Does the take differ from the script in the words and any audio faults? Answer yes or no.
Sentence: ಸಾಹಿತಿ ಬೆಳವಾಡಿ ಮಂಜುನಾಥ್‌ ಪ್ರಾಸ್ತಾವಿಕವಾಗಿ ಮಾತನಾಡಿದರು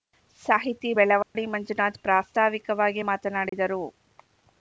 yes